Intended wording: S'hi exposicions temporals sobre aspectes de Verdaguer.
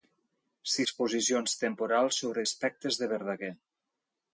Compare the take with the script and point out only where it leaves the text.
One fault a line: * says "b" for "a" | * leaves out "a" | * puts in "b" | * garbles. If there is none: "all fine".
all fine